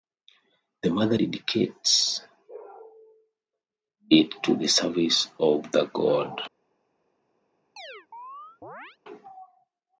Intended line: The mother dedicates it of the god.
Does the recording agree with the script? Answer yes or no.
no